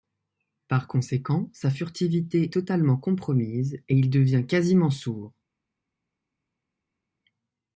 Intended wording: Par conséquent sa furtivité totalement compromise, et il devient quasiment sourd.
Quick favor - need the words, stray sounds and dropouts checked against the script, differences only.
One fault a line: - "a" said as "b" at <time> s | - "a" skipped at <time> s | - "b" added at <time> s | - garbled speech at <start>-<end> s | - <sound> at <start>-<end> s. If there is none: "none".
none